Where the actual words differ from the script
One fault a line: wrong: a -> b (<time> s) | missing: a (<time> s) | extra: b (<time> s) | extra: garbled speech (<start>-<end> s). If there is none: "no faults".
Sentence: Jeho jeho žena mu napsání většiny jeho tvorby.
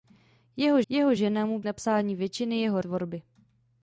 no faults